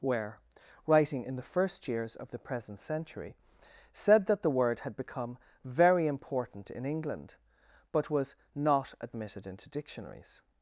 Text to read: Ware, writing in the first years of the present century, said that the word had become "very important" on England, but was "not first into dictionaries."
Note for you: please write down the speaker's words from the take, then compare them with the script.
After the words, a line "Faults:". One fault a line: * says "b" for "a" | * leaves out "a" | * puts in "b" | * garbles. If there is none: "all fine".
Ware, writing in the first years of the present century, said that the word had become "very important" in England, but was "not admitted into dictionaries."
Faults:
* says "in" for "on"
* says "admitted" for "first"